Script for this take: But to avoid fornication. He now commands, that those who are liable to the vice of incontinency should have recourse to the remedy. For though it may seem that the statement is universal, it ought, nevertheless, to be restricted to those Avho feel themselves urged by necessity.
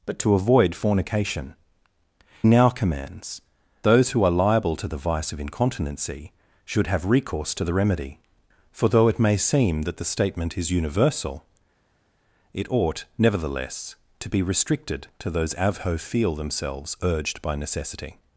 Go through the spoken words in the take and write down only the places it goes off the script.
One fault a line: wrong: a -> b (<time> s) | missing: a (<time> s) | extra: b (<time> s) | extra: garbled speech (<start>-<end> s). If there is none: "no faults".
missing: He (1.5 s)
missing: that (3.4 s)